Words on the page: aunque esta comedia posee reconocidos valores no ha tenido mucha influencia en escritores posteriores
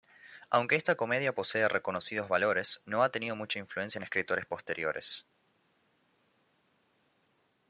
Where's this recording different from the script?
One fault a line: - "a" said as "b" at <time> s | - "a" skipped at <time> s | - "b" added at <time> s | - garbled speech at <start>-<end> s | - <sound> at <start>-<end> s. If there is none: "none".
none